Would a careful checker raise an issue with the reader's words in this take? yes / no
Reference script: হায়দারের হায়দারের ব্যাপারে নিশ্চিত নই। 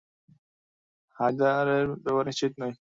yes